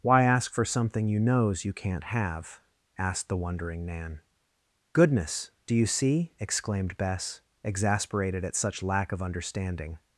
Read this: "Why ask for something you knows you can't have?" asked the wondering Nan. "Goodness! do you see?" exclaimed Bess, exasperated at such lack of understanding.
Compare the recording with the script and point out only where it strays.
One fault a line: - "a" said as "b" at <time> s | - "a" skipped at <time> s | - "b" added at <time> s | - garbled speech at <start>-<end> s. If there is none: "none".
none